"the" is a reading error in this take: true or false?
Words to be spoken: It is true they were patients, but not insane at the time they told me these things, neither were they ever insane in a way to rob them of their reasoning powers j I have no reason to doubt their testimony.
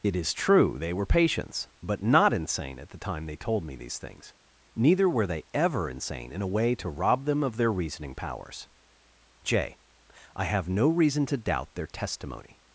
false